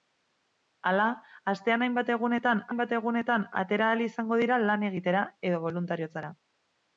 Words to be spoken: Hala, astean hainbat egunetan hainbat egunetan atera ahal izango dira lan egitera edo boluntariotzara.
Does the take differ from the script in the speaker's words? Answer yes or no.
no